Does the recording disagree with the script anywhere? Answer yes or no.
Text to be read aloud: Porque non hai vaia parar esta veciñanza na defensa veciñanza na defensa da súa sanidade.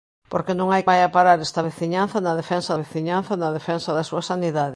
no